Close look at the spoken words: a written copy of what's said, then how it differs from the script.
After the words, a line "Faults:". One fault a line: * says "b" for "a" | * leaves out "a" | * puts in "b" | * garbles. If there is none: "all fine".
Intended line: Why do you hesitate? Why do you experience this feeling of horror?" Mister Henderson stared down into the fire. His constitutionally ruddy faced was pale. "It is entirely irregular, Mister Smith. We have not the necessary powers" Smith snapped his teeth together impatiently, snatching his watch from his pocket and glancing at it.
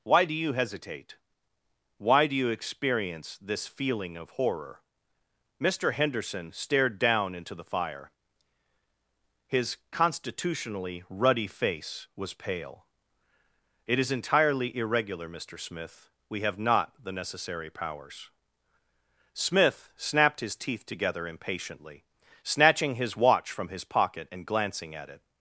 Why do you hesitate? Why do you experience this feeling of horror?" Mister Henderson stared down into the fire. His constitutionally ruddy face was pale. "It is entirely irregular, Mister Smith. We have not the necessary powers" Smith snapped his teeth together impatiently, snatching his watch from his pocket and glancing at it.
Faults:
* says "face" for "faced"